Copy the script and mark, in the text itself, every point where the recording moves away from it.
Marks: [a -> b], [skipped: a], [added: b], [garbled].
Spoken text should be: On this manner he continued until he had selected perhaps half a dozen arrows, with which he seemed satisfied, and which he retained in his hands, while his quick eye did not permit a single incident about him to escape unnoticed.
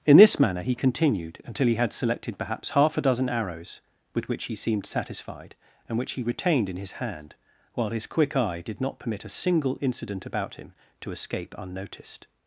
[On -> In] this manner he continued until he had selected perhaps half a dozen arrows, with which he seemed satisfied, and which he retained in his [hands, -> hand] while his quick eye did not permit a single incident about him to escape unnoticed.